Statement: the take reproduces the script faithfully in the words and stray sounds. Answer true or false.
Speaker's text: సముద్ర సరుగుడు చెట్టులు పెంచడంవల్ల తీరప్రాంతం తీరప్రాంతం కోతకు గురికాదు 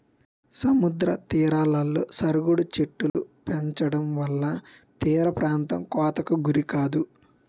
false